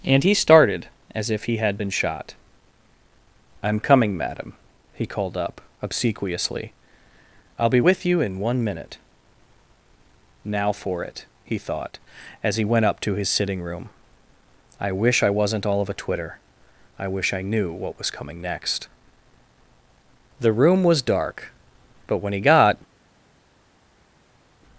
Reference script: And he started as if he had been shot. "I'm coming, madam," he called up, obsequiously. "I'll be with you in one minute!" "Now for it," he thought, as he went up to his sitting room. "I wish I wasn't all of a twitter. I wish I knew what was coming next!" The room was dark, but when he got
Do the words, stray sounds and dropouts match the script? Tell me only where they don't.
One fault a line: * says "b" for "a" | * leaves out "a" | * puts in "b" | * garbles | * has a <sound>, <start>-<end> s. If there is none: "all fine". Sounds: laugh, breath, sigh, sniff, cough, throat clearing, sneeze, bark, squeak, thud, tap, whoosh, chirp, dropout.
all fine